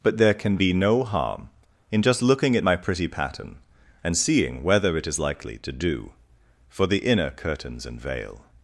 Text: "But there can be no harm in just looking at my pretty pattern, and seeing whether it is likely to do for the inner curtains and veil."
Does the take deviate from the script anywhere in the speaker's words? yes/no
no